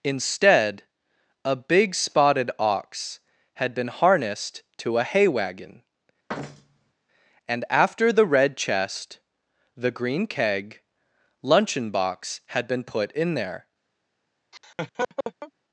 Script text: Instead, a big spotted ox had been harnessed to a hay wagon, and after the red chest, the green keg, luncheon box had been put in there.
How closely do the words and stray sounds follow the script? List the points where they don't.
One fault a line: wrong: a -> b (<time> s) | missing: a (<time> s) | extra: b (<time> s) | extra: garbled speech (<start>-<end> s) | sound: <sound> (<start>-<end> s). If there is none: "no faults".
sound: thud (6.3-6.9 s)
sound: laugh (14.5-15.5 s)